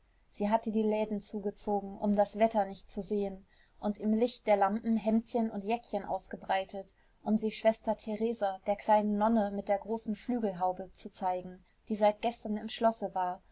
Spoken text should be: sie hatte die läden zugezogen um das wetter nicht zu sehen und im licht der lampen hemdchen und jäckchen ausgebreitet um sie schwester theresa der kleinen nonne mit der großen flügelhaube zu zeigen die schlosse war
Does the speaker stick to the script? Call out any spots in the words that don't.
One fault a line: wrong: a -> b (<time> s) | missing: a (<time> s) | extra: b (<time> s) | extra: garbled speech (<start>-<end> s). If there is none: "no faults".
extra: seit gestern im (12.0 s)